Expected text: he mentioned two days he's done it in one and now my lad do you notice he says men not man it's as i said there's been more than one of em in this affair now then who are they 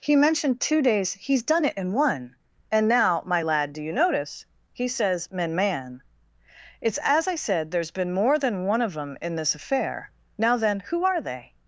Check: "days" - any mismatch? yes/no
no